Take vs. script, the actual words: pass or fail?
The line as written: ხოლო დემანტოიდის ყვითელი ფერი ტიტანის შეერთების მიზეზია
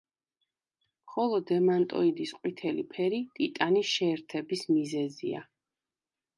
pass